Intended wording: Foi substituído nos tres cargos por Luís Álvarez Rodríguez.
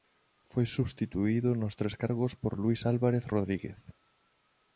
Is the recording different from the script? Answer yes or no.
no